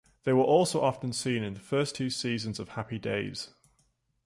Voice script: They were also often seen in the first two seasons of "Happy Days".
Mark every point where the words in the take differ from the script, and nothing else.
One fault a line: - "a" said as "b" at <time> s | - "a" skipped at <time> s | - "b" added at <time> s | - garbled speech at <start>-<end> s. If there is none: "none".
none